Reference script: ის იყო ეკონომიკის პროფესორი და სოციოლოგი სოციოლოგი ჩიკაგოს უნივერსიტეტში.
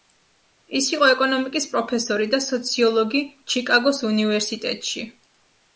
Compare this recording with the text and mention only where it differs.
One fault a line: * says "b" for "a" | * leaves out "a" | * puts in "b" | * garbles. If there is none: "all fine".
* leaves out "სოციოლოგი"